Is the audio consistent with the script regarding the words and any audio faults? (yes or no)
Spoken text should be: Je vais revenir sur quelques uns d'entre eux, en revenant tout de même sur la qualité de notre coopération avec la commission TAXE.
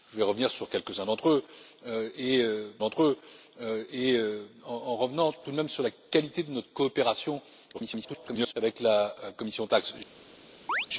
no